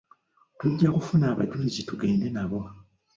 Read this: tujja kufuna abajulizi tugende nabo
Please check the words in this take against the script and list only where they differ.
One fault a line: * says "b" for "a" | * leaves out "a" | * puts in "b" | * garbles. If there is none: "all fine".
all fine